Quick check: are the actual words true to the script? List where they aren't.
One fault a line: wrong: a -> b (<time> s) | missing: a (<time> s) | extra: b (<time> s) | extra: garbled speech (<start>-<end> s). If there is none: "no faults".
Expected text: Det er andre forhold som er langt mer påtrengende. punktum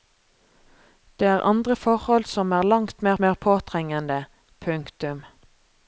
extra: mer (3.2 s)